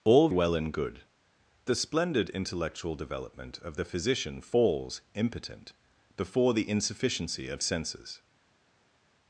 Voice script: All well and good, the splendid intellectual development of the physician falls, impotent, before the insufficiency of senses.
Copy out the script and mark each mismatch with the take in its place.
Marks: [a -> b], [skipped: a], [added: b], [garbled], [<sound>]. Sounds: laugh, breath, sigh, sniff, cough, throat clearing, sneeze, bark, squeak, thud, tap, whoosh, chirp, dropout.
All well and good, the splendid intellectual development of the physician falls, impotent, before the insufficiency of senses.